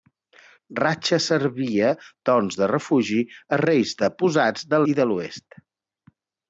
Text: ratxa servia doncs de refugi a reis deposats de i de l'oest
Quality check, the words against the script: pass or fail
pass